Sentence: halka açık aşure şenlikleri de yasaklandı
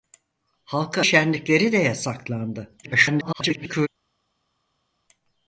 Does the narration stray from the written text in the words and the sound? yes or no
yes